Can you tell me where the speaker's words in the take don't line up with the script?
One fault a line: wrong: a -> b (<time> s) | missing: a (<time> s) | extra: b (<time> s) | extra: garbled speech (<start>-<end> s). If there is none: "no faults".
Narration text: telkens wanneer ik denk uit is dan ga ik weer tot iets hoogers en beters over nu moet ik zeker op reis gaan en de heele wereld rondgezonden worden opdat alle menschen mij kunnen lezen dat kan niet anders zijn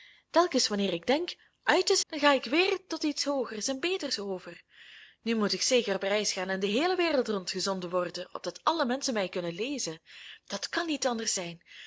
no faults